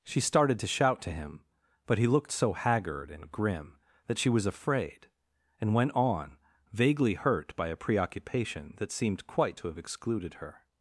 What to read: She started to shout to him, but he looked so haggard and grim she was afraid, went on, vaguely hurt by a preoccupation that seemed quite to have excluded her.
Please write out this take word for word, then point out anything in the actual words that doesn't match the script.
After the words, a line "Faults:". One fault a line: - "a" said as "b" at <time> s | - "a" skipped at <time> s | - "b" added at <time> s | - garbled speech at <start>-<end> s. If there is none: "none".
She started to shout to him, but he looked so haggard and grim that she was afraid, and went on, vaguely hurt by a preoccupation that seemed quite to have excluded her.
Faults:
- "that" added at 4.1 s
- "and" added at 5.6 s